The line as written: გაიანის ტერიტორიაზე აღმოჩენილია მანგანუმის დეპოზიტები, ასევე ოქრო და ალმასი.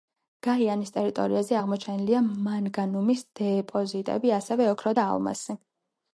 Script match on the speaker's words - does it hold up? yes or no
yes